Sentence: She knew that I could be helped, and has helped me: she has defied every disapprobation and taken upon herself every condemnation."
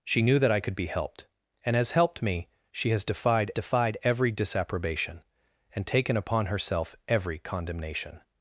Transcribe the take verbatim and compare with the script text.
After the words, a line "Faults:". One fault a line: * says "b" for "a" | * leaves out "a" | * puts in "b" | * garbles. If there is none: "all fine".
She knew that I could be helped, and has helped me: she has defied defied every disapprobation and taken upon herself every condemnation."
Faults:
* puts in "defied"